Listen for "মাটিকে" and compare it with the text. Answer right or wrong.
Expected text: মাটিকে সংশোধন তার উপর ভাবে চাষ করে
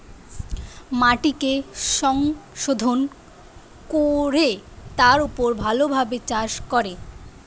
right